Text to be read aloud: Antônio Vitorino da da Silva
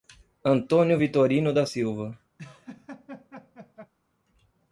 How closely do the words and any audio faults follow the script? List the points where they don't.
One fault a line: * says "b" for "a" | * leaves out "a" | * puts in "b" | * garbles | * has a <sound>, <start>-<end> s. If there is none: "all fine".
* leaves out "da"
* has a laugh, 2.4-3.9 s